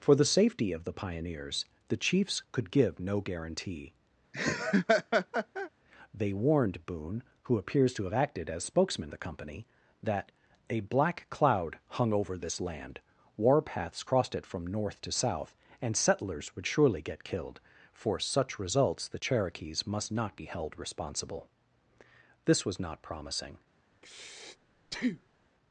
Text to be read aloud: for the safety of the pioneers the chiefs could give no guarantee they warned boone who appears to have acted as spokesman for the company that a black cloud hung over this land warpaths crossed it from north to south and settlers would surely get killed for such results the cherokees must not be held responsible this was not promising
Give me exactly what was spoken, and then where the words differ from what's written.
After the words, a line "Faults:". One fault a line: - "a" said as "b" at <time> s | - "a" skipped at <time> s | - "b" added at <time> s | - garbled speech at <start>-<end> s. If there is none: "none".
for the safety of the pioneers the chiefs could give no guarantee they warned boone who appears to have acted as spokesman the company that a black cloud hung over this land warpaths crossed it from north to south and settlers would surely get killed for such results the cherokees must not be held responsible this was not promising
Faults:
- "for" skipped at 9.1 s